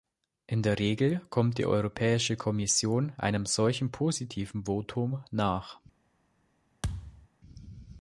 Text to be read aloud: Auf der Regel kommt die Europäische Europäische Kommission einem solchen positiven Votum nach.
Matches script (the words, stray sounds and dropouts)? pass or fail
fail